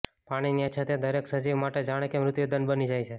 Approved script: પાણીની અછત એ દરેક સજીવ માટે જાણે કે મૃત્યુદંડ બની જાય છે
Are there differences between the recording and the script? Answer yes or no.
no